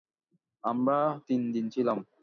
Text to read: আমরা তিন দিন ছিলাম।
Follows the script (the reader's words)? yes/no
yes